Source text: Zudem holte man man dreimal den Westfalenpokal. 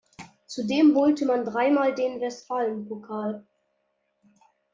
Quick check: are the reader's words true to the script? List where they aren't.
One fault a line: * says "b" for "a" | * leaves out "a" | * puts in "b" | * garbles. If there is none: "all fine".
* leaves out "man"